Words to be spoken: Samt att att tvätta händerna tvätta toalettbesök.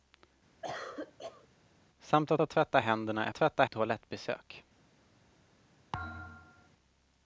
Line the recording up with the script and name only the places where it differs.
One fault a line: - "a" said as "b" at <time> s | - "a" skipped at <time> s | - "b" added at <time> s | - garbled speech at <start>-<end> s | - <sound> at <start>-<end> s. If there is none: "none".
- cough at 0.6-1.5 s
- thud at 5.9-6.7 s